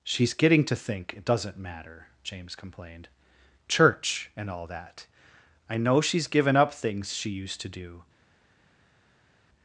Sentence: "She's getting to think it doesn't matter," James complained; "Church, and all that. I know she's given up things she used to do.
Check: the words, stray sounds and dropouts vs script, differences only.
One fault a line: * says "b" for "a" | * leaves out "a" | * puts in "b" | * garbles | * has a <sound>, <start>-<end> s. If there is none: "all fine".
all fine